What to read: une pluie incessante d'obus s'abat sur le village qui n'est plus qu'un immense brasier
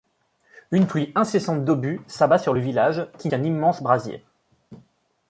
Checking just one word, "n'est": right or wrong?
wrong